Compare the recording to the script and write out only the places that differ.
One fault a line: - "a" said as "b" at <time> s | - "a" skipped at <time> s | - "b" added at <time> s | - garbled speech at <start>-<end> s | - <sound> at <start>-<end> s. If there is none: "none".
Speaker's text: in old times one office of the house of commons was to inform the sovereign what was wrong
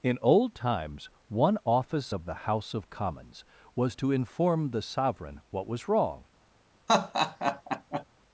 - laugh at 6.9-8.0 s